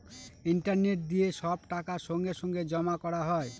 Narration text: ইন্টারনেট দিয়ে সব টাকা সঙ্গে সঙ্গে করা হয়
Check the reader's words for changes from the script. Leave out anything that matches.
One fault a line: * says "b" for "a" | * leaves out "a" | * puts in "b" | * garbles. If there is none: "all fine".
* puts in "জমা"